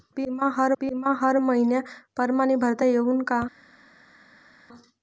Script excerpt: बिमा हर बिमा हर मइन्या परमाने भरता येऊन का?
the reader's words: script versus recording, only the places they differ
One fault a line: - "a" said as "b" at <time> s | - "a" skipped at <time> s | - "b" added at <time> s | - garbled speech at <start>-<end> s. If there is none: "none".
none